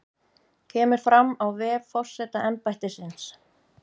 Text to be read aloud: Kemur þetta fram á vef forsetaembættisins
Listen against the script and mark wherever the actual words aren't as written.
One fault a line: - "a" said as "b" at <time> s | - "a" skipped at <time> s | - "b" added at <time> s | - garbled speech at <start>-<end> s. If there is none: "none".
- "þetta" skipped at 1.0 s